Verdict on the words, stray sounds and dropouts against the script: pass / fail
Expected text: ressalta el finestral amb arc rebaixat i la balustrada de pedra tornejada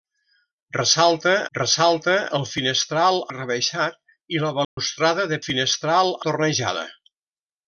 fail